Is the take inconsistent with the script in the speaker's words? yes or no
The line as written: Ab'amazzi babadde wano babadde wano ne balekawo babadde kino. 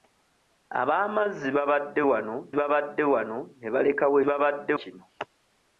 no